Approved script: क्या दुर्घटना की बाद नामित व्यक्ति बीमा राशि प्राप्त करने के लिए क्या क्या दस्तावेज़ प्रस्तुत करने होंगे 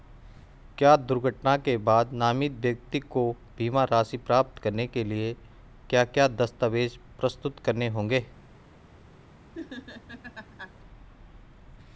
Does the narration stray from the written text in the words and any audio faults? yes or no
yes